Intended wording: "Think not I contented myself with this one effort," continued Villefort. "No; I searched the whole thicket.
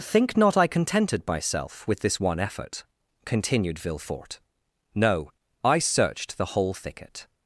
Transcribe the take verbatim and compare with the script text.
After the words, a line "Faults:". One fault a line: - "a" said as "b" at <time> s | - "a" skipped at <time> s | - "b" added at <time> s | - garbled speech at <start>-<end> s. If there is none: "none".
"Think not I contented myself with this one effort," continued Villefort. "No; I searched the whole thicket.
Faults:
none